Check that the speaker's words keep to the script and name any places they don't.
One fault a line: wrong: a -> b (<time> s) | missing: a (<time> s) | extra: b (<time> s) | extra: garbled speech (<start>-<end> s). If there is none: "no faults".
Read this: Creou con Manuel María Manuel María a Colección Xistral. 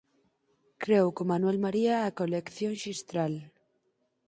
missing: Manuel María (1.9 s)